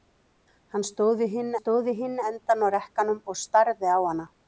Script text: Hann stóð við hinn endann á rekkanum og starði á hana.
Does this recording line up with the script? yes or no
no